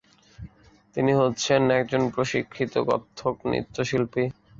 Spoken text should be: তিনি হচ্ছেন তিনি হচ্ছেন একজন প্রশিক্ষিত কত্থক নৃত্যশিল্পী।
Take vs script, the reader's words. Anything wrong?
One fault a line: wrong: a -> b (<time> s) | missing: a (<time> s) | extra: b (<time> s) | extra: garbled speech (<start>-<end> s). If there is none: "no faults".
missing: তিনি হচ্ছেন (1.6 s)